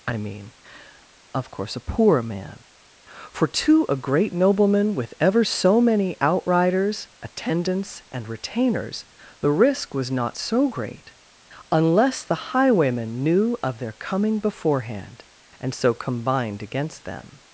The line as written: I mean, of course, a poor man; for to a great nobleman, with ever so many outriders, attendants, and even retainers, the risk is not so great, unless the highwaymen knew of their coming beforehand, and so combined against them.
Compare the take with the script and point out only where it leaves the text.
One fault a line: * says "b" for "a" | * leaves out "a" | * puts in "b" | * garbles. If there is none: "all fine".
* leaves out "even"
* says "was" for "is"